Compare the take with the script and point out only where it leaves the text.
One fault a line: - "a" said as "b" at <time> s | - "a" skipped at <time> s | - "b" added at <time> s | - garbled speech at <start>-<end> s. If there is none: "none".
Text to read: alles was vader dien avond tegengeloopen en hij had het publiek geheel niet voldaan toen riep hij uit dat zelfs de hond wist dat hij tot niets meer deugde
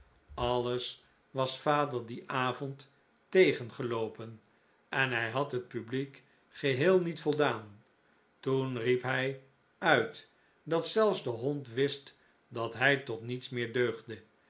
none